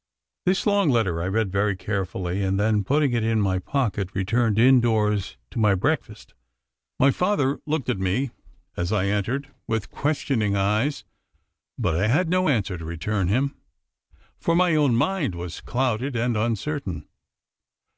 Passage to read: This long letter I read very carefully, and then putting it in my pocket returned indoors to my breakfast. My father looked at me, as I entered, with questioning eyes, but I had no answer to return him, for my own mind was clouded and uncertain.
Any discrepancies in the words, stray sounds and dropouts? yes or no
no